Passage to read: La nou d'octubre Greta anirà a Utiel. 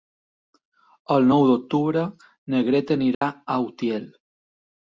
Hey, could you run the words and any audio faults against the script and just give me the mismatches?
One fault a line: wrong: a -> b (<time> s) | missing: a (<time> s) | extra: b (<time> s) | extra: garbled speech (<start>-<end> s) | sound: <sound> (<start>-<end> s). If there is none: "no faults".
wrong: La -> El (1.1 s)
extra: na (2.5 s)
sound: dropout (3.1-3.2 s)